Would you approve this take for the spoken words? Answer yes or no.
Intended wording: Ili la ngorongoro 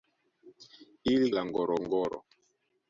yes